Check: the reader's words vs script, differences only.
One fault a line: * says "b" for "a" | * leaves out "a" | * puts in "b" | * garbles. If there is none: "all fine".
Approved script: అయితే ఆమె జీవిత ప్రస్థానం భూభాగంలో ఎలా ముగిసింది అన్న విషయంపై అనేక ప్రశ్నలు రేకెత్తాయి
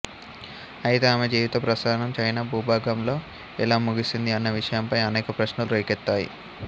* puts in "చైనా"